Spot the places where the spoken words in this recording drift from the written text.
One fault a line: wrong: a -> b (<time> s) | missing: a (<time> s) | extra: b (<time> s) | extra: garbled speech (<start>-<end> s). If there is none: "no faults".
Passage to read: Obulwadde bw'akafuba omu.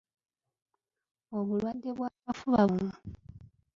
no faults